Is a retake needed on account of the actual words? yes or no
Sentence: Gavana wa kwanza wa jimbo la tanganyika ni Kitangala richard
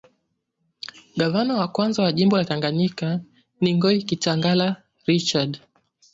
yes